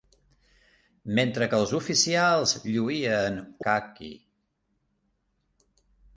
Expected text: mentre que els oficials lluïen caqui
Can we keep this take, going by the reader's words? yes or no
yes